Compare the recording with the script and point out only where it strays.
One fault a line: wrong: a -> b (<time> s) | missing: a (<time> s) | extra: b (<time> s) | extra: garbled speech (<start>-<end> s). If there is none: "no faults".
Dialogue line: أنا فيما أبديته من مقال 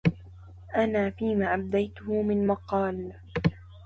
no faults